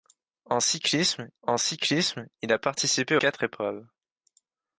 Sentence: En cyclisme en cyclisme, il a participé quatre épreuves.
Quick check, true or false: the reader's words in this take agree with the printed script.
true